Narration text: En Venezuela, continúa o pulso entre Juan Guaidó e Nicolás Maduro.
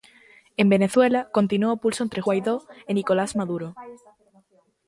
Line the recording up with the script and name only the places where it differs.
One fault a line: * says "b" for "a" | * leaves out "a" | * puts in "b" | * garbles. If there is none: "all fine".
* leaves out "Juan"